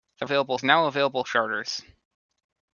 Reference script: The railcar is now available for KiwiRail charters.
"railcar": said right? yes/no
no